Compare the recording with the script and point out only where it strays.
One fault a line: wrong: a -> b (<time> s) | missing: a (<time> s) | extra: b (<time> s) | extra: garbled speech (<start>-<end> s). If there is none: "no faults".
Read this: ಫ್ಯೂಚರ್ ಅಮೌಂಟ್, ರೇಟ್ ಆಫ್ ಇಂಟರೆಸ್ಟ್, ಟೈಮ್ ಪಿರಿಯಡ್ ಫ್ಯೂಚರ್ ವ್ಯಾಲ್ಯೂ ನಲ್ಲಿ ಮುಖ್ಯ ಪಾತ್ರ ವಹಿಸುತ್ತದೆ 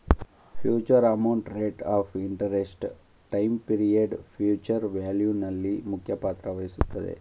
no faults